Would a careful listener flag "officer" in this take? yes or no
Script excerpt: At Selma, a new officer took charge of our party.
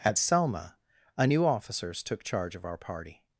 yes